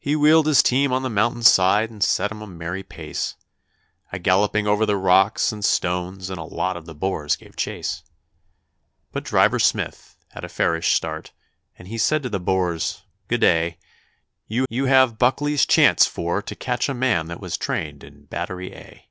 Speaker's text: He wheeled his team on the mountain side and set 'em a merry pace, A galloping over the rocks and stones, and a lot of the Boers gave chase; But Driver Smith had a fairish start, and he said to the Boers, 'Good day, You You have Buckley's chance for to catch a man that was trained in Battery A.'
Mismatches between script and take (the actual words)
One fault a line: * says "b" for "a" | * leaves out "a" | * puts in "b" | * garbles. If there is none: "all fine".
all fine